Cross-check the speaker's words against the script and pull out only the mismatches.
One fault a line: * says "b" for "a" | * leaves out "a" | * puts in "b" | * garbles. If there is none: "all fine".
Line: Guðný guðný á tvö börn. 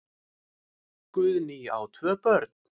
* leaves out "guðný"